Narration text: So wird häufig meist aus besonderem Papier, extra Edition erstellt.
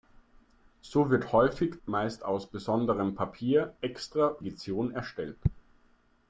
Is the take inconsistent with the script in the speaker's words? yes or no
no